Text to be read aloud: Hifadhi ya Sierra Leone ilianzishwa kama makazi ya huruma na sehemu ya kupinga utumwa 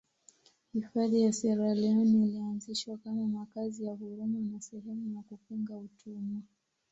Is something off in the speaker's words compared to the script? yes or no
no